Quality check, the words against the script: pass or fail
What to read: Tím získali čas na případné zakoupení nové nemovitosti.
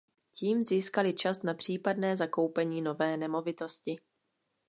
pass